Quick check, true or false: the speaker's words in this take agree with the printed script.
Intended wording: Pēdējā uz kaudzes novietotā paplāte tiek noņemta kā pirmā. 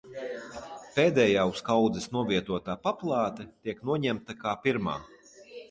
true